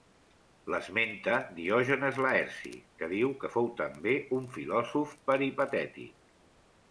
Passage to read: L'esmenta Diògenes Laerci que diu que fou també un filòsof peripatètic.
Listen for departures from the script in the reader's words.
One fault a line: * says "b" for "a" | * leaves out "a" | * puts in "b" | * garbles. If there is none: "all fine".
all fine